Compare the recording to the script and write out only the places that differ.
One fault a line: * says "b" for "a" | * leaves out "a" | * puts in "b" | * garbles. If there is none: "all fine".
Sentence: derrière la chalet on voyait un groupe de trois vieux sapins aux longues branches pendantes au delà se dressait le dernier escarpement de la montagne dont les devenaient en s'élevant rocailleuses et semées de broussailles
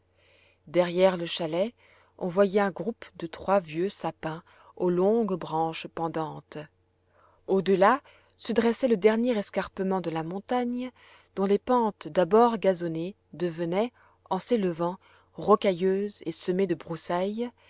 * says "le" for "la"
* puts in "pentes d'abord gazonnées"